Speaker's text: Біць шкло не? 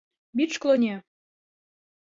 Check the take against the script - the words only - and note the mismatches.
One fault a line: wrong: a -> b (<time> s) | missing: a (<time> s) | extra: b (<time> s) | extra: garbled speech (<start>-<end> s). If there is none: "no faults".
no faults